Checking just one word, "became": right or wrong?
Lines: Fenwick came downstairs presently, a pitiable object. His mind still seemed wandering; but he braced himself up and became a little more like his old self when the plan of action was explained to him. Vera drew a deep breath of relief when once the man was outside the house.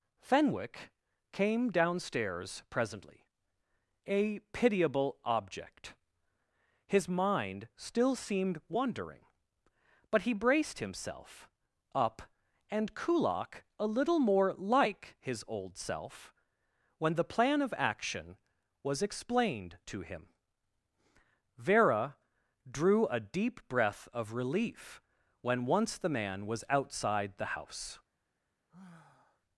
wrong